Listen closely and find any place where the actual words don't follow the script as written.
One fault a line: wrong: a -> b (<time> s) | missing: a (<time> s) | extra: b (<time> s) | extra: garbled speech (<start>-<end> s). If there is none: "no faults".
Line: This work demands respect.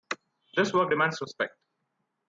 no faults